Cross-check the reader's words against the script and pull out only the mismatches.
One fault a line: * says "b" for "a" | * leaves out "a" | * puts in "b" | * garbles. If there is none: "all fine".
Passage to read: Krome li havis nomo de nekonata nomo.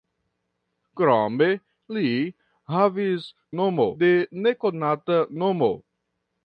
all fine